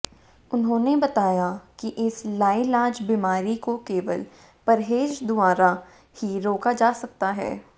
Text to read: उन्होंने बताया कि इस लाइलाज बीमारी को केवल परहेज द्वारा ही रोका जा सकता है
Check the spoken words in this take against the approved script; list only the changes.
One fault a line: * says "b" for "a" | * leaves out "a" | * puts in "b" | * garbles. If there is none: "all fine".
all fine